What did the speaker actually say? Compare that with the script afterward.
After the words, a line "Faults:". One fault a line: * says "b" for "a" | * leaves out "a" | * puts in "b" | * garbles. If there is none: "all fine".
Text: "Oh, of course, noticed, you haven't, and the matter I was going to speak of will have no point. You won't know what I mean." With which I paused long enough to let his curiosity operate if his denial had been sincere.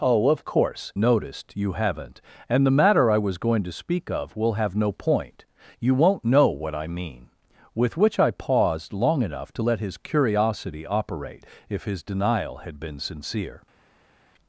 "Oh, of course, noticed, you haven't, and the matter I was going to speak of will have no point. You won't know what I mean." With which I paused long enough to let his curiosity operate if his denial had been sincere.
Faults:
all fine